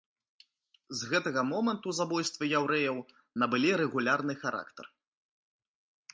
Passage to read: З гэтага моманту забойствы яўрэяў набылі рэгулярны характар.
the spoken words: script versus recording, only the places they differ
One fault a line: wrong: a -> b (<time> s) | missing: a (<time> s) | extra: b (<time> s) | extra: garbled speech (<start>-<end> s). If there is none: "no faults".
no faults